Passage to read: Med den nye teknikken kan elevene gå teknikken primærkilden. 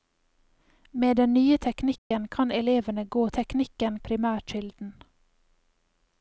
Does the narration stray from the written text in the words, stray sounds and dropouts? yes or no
yes